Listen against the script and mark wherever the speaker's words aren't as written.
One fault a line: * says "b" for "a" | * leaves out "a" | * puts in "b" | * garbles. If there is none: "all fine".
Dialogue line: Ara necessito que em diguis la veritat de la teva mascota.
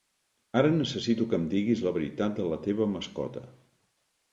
all fine